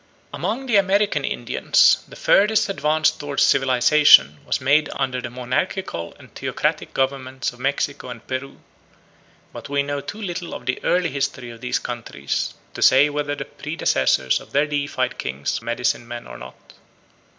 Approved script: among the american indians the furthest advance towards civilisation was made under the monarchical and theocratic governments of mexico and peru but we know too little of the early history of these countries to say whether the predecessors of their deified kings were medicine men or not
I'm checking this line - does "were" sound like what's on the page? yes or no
no